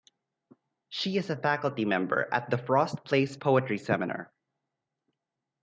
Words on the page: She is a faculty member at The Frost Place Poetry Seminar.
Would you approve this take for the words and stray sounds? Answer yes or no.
yes